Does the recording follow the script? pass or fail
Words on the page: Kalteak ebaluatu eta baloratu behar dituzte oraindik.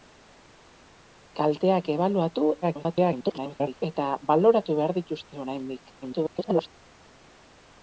fail